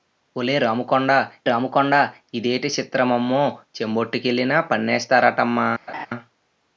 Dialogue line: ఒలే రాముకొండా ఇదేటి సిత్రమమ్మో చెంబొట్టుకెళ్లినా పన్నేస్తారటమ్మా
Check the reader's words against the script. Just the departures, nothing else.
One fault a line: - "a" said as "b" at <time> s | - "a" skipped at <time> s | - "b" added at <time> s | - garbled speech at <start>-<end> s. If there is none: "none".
- "రాముకొండా" added at 1.4 s